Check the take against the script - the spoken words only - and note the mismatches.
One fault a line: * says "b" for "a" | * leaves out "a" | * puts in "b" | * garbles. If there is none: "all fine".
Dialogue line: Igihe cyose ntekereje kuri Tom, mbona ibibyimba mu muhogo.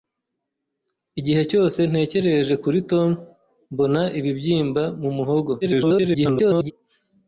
* garbles